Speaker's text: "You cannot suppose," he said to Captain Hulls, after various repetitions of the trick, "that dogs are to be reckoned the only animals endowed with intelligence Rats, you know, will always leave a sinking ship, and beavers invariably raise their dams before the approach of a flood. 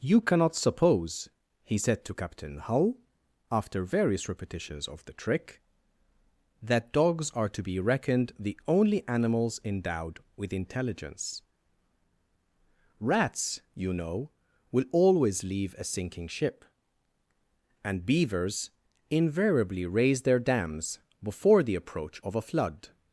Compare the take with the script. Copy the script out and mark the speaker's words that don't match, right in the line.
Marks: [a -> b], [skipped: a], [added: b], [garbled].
"You cannot suppose," he said to Captain [Hulls, -> Hull] after various repetitions of the trick, "that dogs are to be reckoned the only animals endowed with intelligence Rats, you know, will always leave a sinking ship, and beavers invariably raise their dams before the approach of a flood.